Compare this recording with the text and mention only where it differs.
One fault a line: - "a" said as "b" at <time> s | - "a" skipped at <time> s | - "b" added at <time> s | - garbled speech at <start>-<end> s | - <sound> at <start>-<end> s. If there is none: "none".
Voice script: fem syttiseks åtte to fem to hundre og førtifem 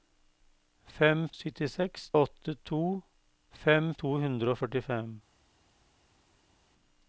none